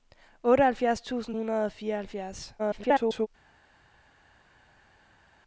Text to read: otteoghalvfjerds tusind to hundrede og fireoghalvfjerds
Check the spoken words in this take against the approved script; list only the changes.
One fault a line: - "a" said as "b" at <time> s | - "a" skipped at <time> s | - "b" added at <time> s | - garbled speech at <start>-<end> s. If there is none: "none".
- "to" skipped at 1.4 s
- garbled speech at 2.6-3.3 s